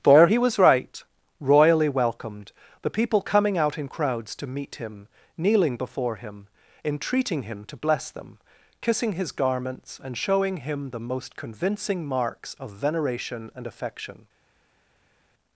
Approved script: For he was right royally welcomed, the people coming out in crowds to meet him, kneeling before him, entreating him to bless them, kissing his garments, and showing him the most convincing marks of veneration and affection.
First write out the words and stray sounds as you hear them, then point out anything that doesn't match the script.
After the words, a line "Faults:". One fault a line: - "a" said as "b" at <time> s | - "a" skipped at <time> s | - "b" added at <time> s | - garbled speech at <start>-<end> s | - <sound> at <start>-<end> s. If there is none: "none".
For he was right royally welcomed, the people coming out in crowds to meet him, kneeling before him, entreating him to bless them, kissing his garments, and showing him the most convincing marks of veneration and affection.
Faults:
none